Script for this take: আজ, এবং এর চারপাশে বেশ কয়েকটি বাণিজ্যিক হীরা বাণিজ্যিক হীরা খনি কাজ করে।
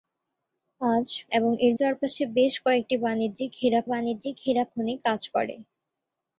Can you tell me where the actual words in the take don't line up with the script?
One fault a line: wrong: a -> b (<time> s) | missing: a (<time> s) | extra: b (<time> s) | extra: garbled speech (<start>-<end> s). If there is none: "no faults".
no faults